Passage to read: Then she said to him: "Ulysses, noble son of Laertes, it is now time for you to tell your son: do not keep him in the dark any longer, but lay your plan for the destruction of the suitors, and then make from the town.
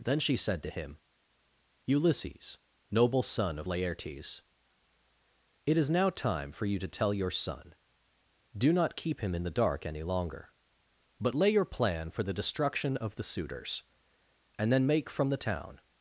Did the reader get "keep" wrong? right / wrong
right